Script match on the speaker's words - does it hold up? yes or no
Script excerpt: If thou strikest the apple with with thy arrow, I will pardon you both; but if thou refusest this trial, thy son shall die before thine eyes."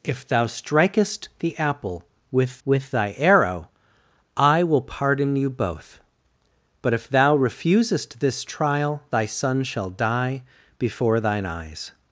yes